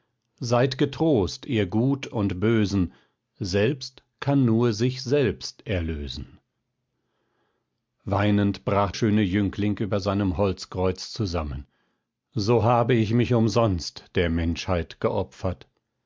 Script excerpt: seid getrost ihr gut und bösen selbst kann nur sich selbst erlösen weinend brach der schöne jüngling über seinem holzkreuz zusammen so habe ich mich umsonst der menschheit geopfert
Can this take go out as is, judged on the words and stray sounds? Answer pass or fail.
fail